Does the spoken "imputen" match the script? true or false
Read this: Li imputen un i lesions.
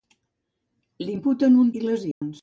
true